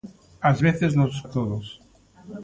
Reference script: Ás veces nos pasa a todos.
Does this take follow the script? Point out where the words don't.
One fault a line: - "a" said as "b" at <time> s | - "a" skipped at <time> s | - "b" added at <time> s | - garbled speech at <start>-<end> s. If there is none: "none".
- "pasa" skipped at 1.2 s